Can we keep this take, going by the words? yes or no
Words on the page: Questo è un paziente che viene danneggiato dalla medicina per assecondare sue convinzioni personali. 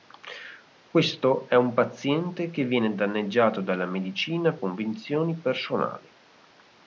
no